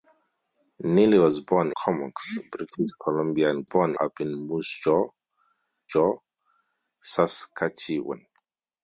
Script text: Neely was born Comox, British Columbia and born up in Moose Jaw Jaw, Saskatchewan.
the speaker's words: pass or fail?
pass